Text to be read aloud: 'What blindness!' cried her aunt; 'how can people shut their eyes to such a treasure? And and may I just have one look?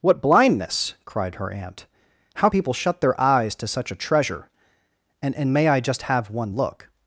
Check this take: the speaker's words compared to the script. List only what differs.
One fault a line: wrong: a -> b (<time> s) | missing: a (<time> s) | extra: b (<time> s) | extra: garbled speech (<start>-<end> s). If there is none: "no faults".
missing: can (2.5 s)